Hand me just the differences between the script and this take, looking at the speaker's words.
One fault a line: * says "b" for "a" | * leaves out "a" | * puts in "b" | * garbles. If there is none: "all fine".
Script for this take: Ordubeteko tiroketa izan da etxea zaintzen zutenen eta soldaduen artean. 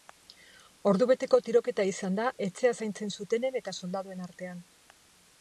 all fine